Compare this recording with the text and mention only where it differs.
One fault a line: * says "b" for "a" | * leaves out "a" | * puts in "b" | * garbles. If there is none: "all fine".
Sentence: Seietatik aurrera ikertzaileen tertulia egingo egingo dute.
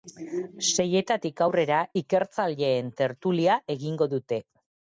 * leaves out "egingo"